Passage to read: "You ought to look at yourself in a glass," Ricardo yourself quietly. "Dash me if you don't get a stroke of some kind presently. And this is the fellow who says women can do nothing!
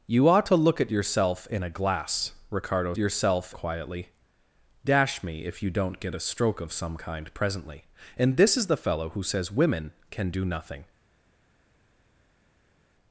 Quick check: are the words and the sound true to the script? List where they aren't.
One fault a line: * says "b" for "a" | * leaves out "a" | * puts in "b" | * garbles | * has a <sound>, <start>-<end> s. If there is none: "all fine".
all fine